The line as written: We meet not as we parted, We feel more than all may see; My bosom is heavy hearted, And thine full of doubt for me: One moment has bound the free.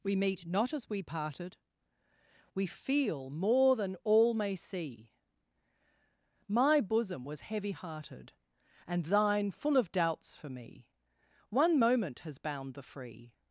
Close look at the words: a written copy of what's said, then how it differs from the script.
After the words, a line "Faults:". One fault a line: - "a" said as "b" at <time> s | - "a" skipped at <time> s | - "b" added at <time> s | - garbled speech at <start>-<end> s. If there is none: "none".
We meet not as we parted, We feel more than all may see; My bosom was heavy hearted, And thine full of doubts for me: One moment has bound the free.
Faults:
- "is" said as "was" at 7.2 s
- "doubt" said as "doubts" at 9.9 s